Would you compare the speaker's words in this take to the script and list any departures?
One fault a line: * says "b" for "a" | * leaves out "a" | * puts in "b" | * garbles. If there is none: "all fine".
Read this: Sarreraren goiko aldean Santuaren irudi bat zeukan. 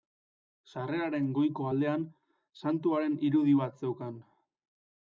all fine